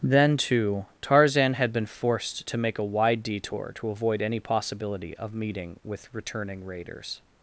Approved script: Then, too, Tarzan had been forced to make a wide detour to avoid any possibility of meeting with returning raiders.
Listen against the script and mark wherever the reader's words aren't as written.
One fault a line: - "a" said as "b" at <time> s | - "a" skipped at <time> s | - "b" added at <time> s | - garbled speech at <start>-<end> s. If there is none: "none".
none